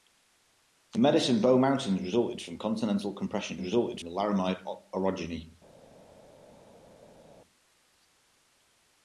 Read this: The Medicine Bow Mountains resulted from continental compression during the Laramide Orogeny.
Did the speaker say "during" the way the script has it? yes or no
no